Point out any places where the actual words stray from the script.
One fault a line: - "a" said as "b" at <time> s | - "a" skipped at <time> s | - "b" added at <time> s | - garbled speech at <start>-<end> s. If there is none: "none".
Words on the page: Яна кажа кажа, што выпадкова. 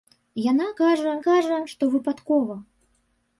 none